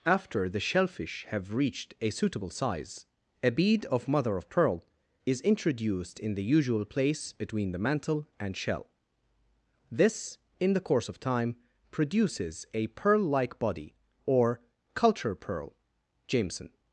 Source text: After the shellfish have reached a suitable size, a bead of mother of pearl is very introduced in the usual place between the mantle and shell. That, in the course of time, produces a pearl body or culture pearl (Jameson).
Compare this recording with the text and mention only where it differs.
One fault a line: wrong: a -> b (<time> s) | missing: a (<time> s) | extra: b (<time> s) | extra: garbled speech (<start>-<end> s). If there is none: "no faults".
missing: very (5.4 s)
wrong: That -> This (9.9 s)
extra: like (13.2 s)